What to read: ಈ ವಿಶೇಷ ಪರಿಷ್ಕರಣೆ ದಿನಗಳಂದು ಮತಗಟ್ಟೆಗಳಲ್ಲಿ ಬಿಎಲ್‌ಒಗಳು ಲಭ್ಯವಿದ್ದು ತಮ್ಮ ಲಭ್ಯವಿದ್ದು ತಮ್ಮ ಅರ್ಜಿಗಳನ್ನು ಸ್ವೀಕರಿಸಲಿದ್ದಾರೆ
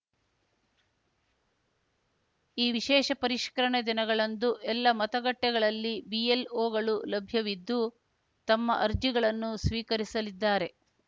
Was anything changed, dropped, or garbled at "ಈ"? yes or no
no